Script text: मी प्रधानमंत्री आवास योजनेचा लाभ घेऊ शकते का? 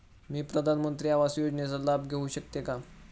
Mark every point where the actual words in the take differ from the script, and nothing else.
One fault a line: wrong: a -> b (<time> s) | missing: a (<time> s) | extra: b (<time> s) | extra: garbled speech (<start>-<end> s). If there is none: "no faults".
no faults